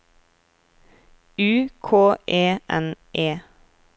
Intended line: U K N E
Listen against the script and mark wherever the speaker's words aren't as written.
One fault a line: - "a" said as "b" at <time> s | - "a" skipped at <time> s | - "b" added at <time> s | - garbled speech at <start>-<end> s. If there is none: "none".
- "E" added at 2.2 s